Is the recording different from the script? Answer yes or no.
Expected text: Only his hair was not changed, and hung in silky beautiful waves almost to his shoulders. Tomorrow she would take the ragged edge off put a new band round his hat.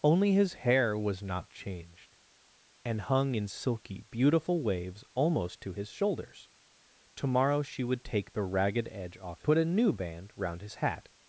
no